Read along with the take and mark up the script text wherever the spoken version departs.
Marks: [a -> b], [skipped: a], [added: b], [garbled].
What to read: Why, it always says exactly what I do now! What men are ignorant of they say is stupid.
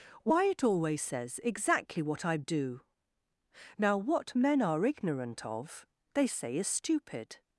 Why, it always says exactly what I do now! What men are ignorant of they say is stupid.